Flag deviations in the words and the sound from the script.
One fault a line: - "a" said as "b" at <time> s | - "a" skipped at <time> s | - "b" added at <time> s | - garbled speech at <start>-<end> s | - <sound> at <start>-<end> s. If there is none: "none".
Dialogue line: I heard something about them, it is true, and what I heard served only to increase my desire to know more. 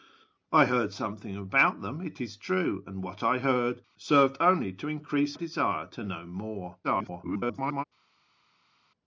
- "my" skipped at 5.4 s
- garbled speech at 6.8-7.8 s